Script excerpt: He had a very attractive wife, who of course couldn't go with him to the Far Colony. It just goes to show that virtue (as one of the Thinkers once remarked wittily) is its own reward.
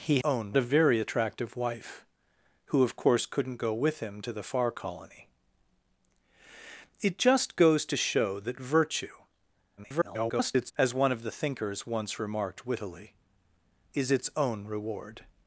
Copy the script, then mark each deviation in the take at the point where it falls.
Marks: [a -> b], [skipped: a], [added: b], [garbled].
He [had -> own] a very attractive wife, who of course couldn't go with him to the Far Colony. It just goes to show that virtue [garbled] (as one of the Thinkers once remarked wittily) is its own reward.